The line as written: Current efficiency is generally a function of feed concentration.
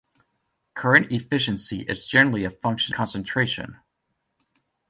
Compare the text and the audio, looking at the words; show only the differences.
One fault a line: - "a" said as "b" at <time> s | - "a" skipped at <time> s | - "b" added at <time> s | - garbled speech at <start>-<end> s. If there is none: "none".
- "of feed" skipped at 3.0 s